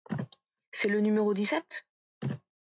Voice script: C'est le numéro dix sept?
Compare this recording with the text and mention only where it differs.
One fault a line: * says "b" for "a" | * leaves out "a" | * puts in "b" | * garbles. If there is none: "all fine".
all fine